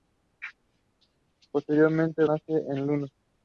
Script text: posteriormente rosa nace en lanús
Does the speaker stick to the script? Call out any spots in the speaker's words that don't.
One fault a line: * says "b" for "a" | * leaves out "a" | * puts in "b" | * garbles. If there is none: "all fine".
* leaves out "rosa"